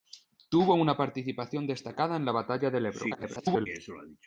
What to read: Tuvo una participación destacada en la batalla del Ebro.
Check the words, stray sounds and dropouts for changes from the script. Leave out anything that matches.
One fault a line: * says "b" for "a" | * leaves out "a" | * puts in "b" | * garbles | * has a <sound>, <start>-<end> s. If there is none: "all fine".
* garbles